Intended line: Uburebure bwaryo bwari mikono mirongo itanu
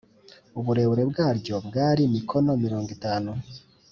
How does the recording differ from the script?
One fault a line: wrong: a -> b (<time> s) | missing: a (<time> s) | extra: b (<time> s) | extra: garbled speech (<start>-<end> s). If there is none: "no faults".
no faults